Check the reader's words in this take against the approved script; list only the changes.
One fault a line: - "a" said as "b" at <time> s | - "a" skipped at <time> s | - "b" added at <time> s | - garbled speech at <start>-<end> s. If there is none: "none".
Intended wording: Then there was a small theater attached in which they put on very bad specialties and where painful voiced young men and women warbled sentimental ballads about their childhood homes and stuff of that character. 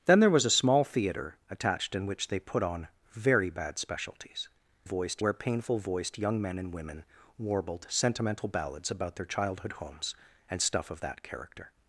- "and" said as "voiced" at 4.8 s